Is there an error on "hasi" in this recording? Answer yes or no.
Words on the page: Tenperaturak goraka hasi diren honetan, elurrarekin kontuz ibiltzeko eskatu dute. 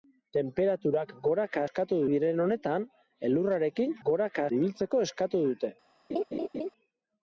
yes